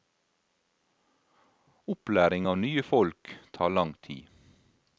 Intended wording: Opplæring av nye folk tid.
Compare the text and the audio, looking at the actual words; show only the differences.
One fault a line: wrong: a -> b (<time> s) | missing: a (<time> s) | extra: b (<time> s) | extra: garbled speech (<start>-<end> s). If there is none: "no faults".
extra: tar lang (3.6 s)